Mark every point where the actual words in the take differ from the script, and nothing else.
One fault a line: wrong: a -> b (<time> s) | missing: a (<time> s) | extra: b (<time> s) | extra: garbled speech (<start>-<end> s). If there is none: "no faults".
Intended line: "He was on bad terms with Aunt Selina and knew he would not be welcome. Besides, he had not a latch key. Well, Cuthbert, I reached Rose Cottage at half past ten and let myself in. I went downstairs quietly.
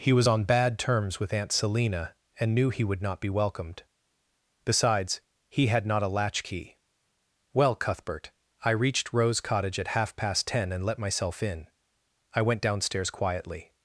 wrong: welcome -> welcomed (3.3 s)